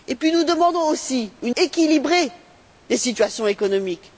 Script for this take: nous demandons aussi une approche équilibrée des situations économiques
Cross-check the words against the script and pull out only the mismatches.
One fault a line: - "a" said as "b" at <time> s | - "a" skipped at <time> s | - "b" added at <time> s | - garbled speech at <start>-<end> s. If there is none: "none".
- "approche" skipped at 1.6 s